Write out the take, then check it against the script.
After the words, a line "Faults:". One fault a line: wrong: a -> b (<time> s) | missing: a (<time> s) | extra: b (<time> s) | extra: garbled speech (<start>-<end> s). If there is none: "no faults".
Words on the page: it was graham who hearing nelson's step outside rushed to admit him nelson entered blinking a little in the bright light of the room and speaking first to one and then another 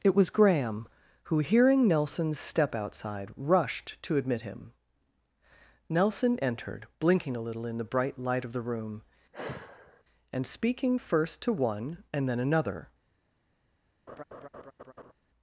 it was graham who hearing nelson's step outside rushed to admit him nelson entered blinking a little in the bright light of the room and speaking first to one and then another
Faults:
no faults